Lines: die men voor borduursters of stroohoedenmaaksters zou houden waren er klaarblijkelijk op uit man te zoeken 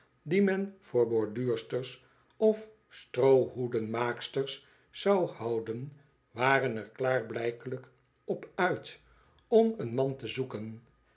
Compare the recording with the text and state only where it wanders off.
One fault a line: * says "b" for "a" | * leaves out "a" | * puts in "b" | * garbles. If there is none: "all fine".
* puts in "om een"